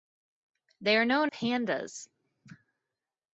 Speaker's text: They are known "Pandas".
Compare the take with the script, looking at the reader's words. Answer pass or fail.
pass